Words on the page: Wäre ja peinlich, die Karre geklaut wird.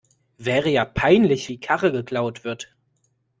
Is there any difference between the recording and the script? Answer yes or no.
no